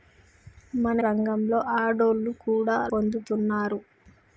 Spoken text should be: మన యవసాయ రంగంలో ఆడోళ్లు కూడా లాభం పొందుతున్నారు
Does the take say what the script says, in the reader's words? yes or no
no